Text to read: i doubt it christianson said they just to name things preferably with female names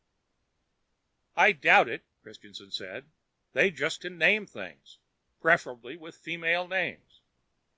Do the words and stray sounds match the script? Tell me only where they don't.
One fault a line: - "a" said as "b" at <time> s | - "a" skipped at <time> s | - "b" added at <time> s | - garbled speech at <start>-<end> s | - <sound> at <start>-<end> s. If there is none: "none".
none